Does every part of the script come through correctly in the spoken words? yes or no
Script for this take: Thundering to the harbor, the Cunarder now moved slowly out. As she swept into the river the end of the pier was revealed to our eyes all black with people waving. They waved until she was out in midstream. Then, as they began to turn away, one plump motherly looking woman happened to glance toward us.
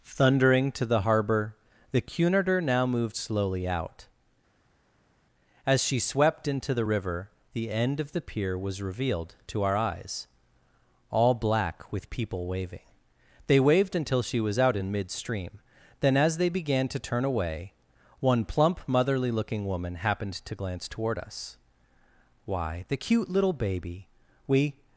no